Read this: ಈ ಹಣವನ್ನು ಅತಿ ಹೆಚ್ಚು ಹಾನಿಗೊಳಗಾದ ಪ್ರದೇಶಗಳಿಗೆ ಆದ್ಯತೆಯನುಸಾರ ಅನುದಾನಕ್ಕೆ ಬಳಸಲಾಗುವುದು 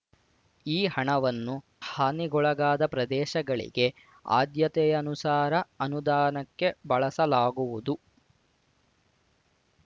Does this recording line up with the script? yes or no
no